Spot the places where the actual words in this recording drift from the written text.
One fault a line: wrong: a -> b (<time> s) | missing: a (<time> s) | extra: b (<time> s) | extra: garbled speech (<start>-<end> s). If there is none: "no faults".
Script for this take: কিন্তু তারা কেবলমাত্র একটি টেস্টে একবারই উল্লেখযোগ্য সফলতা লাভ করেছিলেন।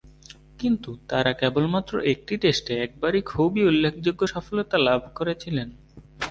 extra: খুবই (3.2 s)